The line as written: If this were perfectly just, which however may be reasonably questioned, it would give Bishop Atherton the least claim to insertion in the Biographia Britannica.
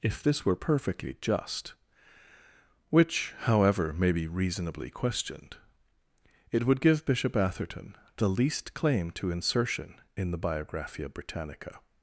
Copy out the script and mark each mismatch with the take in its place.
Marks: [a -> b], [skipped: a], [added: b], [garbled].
If this were perfectly just, which however may be reasonably questioned, it would give Bishop Atherton the least claim to insertion in the Biographia Britannica.